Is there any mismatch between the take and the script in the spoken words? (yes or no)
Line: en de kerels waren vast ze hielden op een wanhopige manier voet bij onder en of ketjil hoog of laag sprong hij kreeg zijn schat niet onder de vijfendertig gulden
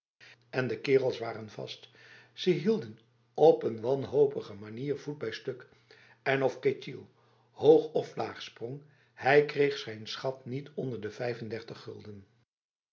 yes